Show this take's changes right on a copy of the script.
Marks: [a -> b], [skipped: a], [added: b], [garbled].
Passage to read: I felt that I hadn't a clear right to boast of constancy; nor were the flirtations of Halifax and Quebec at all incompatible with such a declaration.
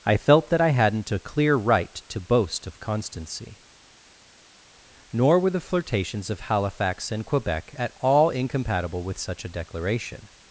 I felt that I hadn't a clear right to boast of constancy; nor were the flirtations of Halifax and Quebec at all incompatible with such a declaration.